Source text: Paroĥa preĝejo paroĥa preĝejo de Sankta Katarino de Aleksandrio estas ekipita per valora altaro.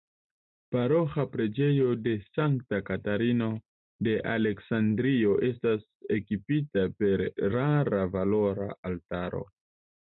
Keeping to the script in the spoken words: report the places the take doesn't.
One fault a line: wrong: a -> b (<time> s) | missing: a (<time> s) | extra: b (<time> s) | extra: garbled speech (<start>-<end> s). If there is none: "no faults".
missing: paroĥa preĝejo (1.9 s)
extra: rara (7.6 s)